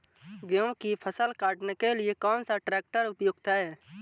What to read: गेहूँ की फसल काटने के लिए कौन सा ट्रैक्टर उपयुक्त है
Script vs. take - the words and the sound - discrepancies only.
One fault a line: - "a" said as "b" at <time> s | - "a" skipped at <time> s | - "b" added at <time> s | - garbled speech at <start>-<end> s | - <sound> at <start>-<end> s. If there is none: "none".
none